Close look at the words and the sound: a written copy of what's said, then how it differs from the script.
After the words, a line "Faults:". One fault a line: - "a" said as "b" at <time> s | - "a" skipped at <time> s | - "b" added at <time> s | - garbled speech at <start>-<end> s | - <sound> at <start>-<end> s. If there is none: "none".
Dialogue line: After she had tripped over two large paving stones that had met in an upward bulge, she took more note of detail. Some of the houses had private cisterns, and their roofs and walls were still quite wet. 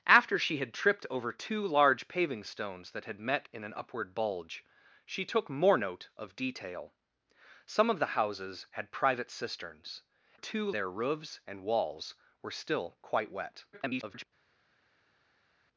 After she had tripped over two large paving stones that had met in an upward bulge, she took more note of detail. Some of the houses had private cisterns, two their roofs and walls were still quite wet. [garbled]
Faults:
- "and" said as "two" at 10.3 s
- garbled speech at 13.7-14.3 s